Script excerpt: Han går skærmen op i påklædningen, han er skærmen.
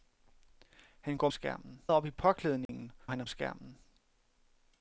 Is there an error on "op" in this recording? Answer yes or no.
no